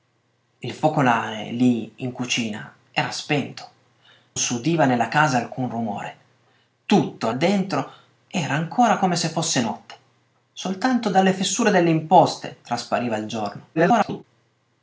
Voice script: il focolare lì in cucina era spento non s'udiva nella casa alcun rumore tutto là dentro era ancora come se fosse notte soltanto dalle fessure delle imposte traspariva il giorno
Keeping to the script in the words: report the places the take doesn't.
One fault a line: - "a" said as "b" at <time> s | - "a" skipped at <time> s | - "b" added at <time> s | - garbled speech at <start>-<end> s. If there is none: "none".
- "non" skipped at 3.7 s
- "là" skipped at 7.3 s
- garbled speech at 13.7-14.2 s